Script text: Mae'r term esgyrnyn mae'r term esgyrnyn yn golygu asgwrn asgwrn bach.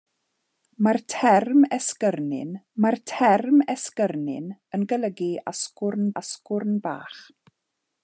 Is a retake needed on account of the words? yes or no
no